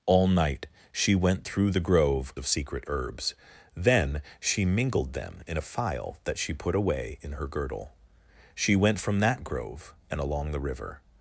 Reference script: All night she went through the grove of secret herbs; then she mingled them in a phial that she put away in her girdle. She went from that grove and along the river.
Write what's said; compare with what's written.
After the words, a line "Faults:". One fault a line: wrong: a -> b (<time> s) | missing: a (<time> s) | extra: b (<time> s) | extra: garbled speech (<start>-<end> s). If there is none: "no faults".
All night she went through the grove of secret herbs; then she mingled them in a phial that she put away in her girdle. She went from that grove and along the river.
Faults:
no faults